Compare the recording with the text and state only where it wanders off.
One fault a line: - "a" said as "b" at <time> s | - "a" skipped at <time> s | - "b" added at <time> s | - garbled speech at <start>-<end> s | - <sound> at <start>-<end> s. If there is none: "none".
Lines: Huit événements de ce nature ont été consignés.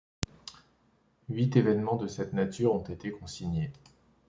- "ce" said as "cette" at 2.1 s